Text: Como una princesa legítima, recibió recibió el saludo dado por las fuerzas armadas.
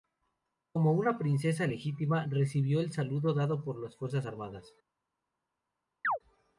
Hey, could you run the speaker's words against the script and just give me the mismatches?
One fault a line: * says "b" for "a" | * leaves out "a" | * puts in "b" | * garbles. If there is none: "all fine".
* leaves out "recibió"